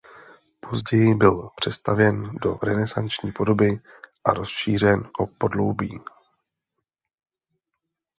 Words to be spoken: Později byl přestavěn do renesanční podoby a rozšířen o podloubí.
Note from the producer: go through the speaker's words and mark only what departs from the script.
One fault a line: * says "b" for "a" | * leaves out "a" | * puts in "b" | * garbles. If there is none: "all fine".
all fine